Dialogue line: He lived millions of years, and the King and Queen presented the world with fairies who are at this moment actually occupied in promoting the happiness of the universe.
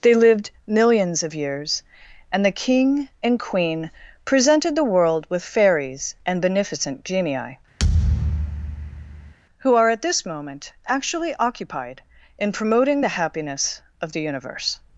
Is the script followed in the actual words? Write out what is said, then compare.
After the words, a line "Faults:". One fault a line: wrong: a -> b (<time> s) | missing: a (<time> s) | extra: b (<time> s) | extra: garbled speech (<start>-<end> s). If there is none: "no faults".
They lived millions of years, and the King and Queen presented the world with fairies and beneficent genii, who are at this moment actually occupied in promoting the happiness of the universe.
Faults:
wrong: He -> They (0.0 s)
extra: and beneficent genii (6.2 s)